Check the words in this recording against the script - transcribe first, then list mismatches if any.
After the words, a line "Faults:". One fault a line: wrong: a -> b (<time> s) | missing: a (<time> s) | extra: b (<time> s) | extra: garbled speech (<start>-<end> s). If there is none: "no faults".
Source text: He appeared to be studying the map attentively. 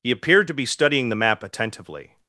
He appeared to be studying the map attentively.
Faults:
no faults